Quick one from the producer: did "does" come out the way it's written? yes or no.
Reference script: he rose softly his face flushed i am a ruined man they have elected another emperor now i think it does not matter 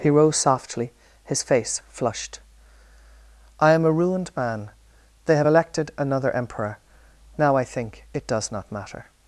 yes